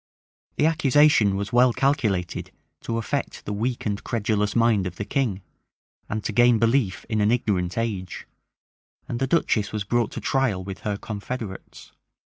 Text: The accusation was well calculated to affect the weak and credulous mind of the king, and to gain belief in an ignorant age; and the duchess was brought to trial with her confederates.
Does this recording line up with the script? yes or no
yes